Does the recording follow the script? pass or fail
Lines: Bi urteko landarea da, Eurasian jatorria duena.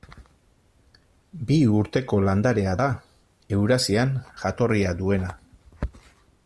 pass